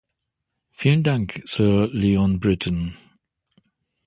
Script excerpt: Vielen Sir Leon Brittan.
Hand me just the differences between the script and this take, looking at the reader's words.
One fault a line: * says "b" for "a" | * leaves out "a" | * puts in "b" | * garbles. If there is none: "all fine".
* puts in "Dank"